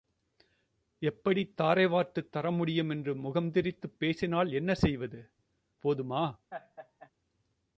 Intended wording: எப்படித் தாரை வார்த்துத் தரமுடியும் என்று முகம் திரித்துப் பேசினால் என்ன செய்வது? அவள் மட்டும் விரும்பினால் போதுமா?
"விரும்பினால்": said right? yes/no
no